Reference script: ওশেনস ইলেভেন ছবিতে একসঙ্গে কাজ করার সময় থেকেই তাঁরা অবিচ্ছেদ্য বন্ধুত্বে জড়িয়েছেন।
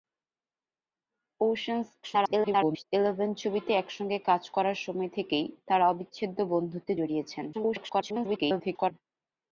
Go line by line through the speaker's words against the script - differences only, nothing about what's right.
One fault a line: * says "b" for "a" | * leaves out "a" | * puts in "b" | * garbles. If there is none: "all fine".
* garbles
* garbles